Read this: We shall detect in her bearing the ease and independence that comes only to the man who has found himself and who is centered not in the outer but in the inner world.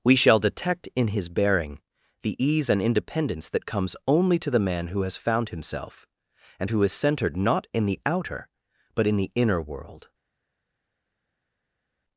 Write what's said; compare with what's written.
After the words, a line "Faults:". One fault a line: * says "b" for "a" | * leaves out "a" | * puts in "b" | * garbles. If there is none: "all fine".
We shall detect in his bearing the ease and independence that comes only to the man who has found himself and who is centered not in the outer but in the inner world.
Faults:
* says "his" for "her"